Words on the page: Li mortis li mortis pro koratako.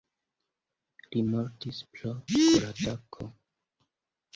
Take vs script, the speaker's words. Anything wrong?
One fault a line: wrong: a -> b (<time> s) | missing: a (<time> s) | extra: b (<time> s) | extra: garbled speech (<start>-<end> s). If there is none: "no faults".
missing: li mortis (1.8 s)